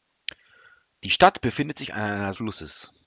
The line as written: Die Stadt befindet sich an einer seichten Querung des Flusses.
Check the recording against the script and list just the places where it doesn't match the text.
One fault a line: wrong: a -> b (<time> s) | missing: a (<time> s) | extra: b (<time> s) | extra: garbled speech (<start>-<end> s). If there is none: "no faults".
missing: seichten Querung des (2.3 s)